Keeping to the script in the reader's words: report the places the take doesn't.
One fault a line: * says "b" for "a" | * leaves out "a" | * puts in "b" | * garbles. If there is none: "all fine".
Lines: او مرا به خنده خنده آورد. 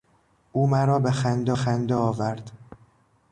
all fine